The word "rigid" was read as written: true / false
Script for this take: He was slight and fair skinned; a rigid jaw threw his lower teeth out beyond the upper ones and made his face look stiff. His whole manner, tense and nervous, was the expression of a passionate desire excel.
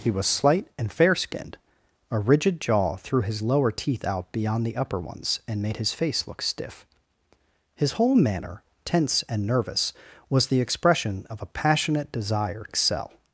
true